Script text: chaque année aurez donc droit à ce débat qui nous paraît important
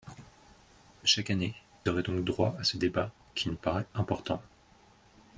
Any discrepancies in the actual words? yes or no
no